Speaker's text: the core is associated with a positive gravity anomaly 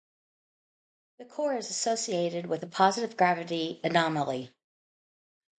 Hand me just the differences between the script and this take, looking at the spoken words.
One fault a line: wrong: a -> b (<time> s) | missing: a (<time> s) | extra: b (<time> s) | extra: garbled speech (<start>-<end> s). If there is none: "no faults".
no faults